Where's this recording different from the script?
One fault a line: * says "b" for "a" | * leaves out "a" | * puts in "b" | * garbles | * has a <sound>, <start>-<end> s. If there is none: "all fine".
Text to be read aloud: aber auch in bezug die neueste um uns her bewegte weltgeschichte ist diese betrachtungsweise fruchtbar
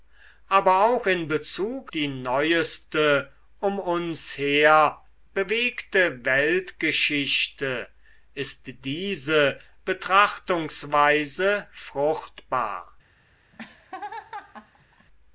* has a laugh, 13.5-15.1 s